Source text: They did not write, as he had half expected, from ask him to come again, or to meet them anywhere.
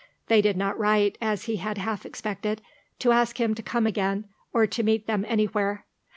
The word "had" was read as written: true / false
true